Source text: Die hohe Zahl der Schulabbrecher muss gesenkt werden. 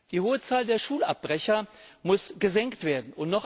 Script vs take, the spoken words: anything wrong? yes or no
no